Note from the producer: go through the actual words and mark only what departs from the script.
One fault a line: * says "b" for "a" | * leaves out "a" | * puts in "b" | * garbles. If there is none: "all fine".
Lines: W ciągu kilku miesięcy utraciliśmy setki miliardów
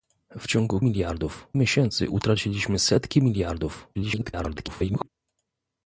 * says "miliardów" for "kilku"
* garbles